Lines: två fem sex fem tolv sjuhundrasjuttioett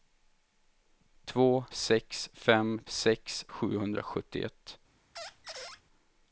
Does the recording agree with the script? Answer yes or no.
no